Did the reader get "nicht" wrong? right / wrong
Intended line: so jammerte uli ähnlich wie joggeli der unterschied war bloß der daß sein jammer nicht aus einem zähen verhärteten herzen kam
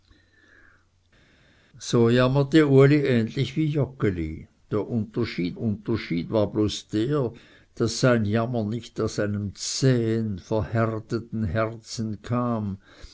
right